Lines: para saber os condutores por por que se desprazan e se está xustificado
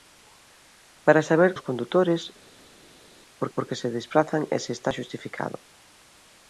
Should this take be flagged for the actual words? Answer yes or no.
no